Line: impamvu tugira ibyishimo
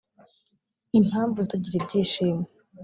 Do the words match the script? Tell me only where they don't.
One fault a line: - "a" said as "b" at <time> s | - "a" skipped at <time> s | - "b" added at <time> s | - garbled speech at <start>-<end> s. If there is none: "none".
none